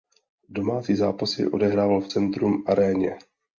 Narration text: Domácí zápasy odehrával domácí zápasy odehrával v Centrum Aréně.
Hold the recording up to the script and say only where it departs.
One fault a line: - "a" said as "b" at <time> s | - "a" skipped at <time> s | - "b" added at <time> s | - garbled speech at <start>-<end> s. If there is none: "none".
- "domácí zápasy odehrával" skipped at 2.0 s